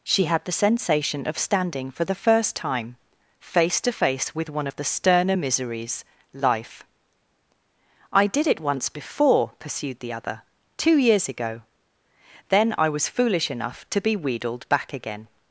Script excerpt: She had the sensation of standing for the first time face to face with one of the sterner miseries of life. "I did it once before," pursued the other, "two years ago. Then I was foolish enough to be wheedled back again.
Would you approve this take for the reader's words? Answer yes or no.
no